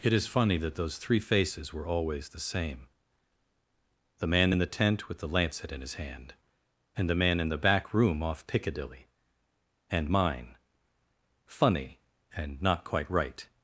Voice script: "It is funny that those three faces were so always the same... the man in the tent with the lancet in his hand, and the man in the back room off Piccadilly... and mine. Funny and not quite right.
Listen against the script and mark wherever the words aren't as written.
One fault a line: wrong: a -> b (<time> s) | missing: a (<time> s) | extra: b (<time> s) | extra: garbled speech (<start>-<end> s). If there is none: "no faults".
missing: so (1.9 s)